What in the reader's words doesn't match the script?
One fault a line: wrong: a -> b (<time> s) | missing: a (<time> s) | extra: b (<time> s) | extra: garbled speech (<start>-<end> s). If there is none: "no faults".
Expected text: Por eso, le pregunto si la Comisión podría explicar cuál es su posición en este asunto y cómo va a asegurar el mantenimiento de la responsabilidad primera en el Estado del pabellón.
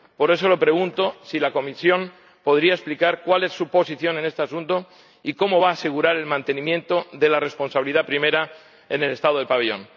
no faults